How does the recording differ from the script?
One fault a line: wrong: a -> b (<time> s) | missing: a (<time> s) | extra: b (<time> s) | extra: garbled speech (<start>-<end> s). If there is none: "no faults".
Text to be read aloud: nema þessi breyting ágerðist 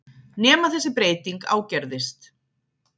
no faults